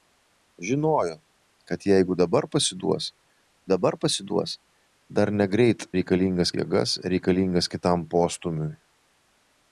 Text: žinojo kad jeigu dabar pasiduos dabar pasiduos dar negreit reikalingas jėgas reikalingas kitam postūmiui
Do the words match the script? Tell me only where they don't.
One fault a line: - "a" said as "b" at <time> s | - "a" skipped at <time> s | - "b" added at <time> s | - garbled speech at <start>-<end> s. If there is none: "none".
none